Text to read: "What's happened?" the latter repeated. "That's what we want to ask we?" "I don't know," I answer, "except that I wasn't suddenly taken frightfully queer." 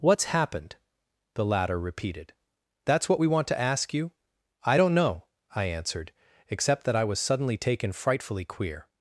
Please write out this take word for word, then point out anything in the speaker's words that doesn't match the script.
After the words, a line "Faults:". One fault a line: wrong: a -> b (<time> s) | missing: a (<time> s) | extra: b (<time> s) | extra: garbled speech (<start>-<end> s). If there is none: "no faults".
"What's happened?" the latter repeated. "That's what we want to ask you?" "I don't know," I answered, "except that I was suddenly taken frightfully queer."
Faults:
wrong: we -> you (3.9 s)
wrong: answer -> answered (5.6 s)
wrong: wasn't -> was (7.0 s)